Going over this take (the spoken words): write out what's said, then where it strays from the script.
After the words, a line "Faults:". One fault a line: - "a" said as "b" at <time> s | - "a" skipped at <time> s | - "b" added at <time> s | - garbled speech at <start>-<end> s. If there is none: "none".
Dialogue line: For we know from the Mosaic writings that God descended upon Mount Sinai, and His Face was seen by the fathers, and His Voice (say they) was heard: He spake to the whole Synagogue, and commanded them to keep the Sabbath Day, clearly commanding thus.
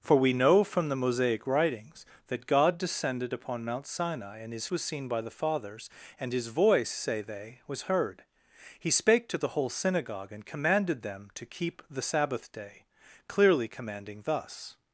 For we know from the Mosaic writings that God descended upon Mount Sinai, and His Was seen by the fathers, and His Voice (say they) was heard: He spake to the whole Synagogue, and commanded them to keep the Sabbath Day, clearly commanding thus.
Faults:
- "Face" skipped at 4.7 s